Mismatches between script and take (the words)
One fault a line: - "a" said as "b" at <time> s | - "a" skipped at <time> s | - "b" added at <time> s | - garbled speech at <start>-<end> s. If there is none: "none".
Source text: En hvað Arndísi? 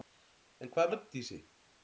none